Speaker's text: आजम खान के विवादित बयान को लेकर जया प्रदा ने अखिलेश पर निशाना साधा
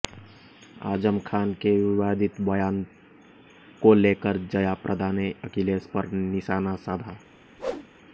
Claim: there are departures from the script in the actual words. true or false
false